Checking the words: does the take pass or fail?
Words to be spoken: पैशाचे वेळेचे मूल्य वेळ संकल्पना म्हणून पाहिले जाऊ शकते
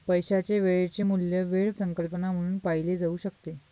pass